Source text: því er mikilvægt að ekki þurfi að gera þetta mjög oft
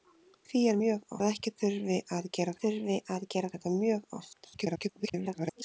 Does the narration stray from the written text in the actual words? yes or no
yes